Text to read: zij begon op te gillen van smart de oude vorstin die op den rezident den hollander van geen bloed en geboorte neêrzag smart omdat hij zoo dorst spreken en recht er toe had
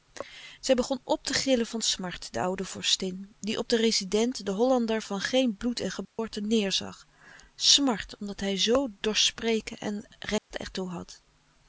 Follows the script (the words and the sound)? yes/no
no